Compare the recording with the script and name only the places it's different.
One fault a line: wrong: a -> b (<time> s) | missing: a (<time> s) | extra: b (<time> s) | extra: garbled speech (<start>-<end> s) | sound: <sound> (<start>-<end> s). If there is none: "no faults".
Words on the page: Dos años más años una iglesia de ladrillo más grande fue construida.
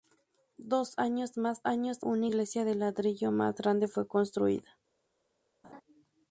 sound: laugh (5.6-5.8 s)